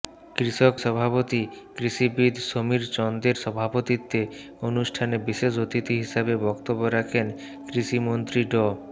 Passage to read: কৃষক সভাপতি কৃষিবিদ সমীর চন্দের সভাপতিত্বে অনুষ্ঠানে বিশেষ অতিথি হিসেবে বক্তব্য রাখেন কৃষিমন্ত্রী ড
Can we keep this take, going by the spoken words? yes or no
yes